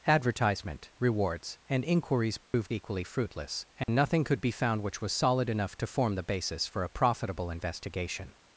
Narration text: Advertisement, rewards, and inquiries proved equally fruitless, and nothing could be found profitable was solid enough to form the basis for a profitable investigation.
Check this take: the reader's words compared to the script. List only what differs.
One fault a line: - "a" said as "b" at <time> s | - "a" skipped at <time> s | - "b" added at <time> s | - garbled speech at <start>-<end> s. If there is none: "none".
- "profitable" said as "which" at 4.8 s